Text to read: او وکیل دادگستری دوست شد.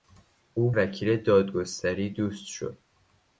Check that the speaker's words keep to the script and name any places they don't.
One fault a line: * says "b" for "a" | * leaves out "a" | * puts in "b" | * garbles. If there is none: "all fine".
all fine